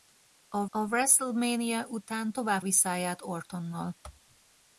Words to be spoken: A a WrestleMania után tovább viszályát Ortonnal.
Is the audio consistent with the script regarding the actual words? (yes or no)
yes